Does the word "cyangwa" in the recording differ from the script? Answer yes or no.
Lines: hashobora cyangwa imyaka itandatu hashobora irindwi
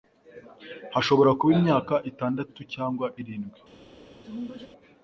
yes